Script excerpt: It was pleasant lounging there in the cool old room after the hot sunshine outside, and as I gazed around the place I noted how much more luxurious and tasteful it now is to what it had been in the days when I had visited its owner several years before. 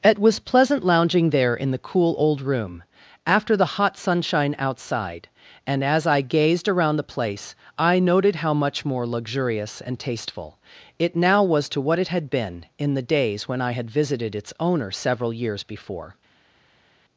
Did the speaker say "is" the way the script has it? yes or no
no